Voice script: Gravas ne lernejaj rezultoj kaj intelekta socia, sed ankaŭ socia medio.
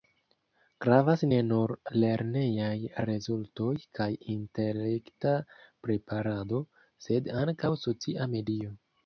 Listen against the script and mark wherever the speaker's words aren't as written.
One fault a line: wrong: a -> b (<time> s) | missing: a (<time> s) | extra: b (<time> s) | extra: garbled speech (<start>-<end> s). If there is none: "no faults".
extra: nur (1.5 s)
wrong: socia -> preparado (5.9 s)